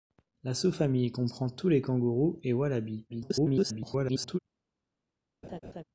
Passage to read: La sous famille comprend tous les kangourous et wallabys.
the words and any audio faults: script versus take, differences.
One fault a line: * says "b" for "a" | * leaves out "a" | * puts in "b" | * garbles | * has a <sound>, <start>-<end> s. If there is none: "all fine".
* garbles
* has a laugh, 5.4-5.8 s